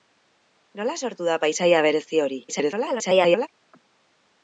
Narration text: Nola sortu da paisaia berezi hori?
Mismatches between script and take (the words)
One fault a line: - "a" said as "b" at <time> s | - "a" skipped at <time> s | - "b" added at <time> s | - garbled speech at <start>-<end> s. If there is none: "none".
- garbled speech at 2.5-3.5 s